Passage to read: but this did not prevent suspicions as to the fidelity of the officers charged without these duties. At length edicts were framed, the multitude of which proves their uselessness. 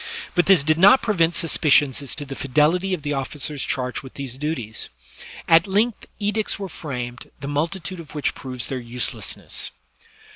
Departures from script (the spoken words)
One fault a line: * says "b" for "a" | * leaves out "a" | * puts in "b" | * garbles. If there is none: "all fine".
* says "with" for "without"